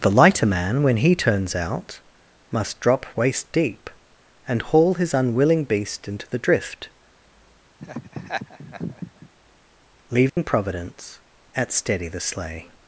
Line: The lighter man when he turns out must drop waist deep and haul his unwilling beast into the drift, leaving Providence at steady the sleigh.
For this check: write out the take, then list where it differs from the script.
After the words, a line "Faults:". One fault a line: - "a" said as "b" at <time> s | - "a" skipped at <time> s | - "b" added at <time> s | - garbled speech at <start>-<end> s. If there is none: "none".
The lighter man when he turns out must drop waist deep and haul his unwilling beast into the drift, leaving Providence at steady the sleigh.
Faults:
none